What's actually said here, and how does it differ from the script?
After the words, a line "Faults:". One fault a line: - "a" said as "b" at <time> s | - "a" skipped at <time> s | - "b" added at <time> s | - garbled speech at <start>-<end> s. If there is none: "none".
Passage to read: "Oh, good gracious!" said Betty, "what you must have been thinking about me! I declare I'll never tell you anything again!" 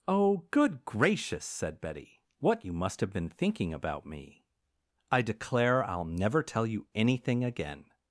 "Oh, good gracious!" said Betty, "what you must have been thinking about me! I declare I'll never tell you anything again!"
Faults:
none